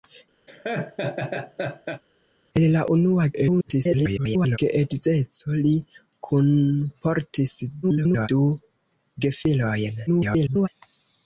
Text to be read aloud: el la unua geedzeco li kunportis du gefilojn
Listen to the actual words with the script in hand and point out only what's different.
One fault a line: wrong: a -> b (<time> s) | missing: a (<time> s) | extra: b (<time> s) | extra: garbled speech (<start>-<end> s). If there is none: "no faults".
extra: garbled speech (3.3-4.6 s)
extra: garbled speech (7.8-8.3 s)
extra: garbled speech (10.1-10.7 s)